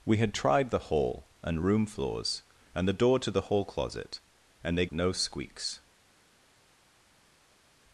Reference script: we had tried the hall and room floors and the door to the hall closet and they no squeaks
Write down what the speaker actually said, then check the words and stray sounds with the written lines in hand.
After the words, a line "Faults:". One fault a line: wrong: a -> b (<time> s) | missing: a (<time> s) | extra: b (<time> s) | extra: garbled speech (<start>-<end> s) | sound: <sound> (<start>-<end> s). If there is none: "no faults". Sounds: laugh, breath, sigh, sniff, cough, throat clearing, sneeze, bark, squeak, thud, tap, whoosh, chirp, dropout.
we had tried the hall and room floors and the door to the hall closet and they no squeaks
Faults:
no faults